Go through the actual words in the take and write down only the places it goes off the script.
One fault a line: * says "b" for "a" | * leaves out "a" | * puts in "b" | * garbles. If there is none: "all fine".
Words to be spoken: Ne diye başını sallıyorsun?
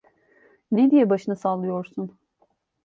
all fine